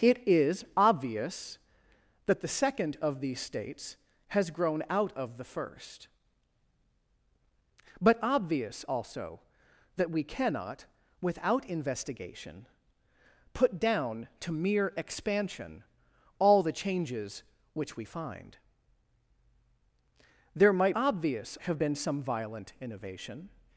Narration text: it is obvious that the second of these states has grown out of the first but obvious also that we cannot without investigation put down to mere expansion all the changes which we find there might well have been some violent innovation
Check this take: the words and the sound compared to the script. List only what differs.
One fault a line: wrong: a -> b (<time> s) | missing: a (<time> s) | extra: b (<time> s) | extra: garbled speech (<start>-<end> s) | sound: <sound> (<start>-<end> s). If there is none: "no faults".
wrong: well -> obvious (21.0 s)